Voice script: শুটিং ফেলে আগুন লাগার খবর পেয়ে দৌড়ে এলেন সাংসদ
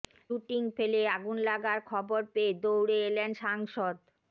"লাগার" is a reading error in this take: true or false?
false